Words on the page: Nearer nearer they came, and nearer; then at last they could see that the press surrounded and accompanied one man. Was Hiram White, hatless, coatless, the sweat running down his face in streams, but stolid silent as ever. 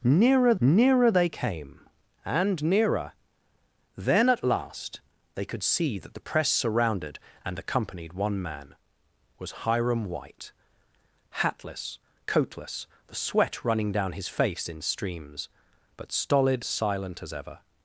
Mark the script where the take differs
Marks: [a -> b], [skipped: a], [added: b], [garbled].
Nearer nearer they came, and nearer; then at last they could see that the press surrounded and accompanied one man. Was Hiram White, hatless, coatless, the sweat running down his face in streams, but stolid silent as ever.